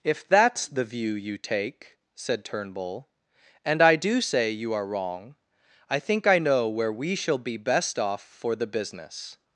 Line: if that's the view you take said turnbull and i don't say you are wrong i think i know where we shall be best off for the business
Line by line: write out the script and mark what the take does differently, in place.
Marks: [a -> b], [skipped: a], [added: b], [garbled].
if that's the view you take said turnbull and i [don't -> do] say you are wrong i think i know where we shall be best off for the business